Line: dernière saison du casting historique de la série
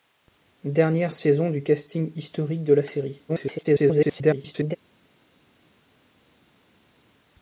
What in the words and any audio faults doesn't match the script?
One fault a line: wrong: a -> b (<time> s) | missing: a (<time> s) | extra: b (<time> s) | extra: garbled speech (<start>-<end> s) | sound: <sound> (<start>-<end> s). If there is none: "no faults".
extra: garbled speech (3.3-4.8 s)